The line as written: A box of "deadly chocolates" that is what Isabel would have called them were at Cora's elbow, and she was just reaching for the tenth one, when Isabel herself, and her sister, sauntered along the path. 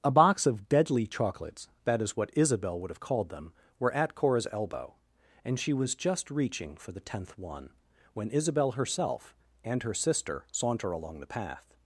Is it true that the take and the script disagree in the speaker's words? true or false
true